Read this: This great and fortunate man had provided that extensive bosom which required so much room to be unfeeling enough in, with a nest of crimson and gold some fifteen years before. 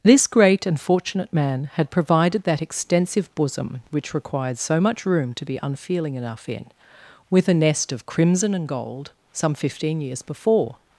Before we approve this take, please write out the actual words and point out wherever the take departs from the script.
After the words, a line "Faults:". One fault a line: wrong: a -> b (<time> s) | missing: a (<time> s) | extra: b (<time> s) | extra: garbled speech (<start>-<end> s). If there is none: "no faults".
This great and fortunate man had provided that extensive bosom which required so much room to be unfeeling enough in, with a nest of crimson and gold some fifteen years before.
Faults:
no faults